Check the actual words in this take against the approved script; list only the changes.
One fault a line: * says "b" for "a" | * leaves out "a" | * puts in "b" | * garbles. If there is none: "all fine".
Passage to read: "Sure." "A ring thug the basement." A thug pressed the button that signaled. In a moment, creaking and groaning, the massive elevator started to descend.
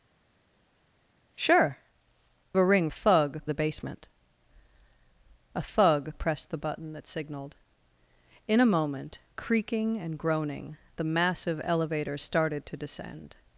all fine